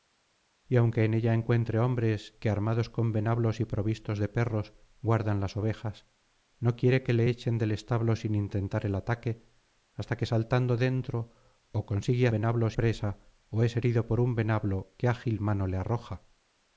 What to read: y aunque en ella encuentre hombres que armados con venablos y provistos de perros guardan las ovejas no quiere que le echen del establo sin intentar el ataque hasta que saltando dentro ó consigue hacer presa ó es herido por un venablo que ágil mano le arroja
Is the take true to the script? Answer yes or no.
no